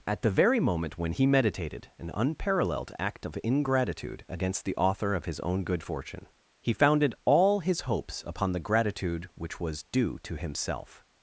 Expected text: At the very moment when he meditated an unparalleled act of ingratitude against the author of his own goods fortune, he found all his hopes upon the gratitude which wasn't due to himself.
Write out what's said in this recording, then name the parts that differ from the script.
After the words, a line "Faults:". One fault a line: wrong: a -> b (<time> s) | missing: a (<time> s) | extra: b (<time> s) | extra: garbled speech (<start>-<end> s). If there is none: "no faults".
At the very moment when he meditated an unparalleled act of ingratitude against the author of his own good fortune, he founded all his hopes upon the gratitude which was due to himself.
Faults:
wrong: goods -> good (5.6 s)
wrong: found -> founded (6.7 s)
wrong: wasn't -> was (9.6 s)